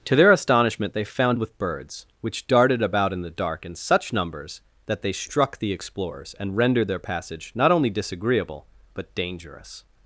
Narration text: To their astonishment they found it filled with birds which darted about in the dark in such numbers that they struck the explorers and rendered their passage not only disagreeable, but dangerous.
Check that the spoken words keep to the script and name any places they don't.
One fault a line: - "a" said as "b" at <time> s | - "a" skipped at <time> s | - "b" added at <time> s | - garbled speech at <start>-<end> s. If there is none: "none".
- "it filled" skipped at 1.4 s